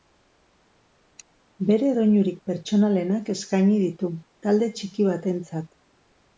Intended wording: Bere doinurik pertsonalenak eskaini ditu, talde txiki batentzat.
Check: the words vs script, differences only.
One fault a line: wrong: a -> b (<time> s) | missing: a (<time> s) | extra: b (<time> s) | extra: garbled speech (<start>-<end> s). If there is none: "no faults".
no faults